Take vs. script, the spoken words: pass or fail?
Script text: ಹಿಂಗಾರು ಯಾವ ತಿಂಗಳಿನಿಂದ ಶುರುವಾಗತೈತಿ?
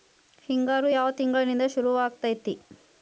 pass